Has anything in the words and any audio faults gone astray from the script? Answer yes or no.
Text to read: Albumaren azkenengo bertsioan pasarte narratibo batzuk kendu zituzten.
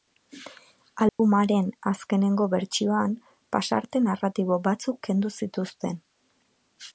yes